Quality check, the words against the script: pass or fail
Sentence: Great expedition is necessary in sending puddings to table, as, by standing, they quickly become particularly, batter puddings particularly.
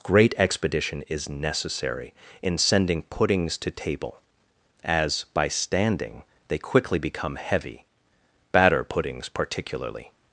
fail